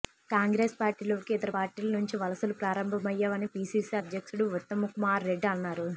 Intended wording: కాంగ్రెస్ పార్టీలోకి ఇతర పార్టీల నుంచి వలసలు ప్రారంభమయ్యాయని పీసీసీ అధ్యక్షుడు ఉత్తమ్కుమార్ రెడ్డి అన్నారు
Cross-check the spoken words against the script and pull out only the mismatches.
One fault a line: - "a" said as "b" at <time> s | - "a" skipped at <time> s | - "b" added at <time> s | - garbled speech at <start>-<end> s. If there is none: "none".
none